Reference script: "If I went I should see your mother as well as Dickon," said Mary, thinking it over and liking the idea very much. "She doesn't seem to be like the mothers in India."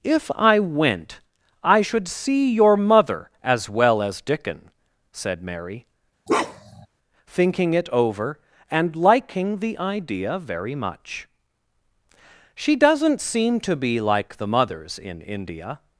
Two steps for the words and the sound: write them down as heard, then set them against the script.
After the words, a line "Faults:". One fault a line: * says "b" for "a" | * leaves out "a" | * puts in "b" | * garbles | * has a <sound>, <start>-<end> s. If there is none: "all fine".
"If I went I should see your mother as well as Dickon," said Mary, thinking it over and liking the idea very much. "She doesn't seem to be like the mothers in India."
Faults:
* has a bark, 6.3-6.9 s